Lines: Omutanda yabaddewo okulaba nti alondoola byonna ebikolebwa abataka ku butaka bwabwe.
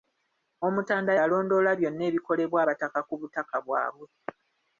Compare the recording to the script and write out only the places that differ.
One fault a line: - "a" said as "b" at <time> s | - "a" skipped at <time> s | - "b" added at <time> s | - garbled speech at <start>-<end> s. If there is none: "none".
- "yabaddewo okulaba nti" skipped at 1.1 s